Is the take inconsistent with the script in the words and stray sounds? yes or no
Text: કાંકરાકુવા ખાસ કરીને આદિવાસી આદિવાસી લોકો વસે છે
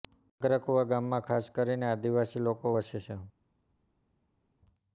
yes